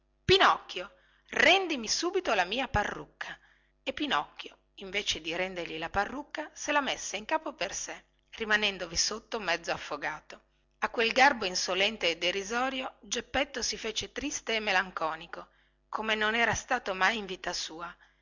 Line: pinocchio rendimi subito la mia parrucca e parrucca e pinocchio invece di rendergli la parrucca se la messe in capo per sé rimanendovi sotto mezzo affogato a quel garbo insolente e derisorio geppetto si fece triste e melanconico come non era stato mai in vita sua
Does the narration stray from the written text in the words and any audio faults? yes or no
yes